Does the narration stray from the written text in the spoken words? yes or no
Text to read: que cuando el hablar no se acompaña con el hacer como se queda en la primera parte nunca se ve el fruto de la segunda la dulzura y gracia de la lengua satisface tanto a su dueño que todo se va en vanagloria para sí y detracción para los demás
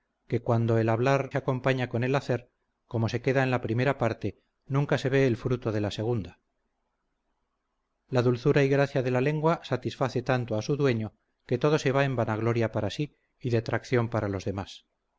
yes